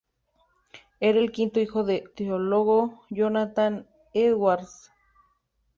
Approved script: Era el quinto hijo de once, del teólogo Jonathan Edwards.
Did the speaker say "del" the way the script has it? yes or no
no